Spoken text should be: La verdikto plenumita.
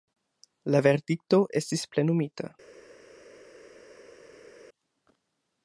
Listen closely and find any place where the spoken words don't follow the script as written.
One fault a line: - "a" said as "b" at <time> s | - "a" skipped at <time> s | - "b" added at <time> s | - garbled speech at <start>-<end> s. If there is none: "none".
- "estis" added at 1.6 s